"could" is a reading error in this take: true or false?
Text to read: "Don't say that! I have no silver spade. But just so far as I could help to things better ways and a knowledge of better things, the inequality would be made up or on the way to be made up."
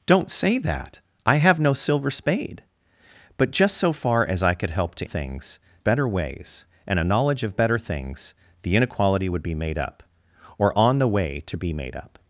false